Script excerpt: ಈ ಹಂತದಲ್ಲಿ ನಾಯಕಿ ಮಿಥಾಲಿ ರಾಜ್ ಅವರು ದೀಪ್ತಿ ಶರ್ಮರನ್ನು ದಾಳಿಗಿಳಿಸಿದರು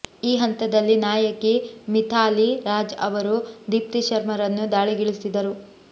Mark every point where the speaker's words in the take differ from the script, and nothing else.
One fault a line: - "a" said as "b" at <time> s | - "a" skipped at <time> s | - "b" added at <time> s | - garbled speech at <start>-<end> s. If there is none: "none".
none